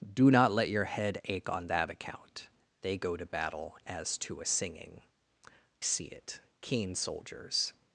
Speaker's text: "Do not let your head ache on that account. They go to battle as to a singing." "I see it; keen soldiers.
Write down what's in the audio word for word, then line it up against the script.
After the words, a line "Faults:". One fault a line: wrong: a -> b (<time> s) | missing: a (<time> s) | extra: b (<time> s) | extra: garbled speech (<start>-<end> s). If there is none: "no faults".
"Do not let your head ache on that account. They go to battle as to a singing." "see it; keen soldiers.
Faults:
missing: I (5.0 s)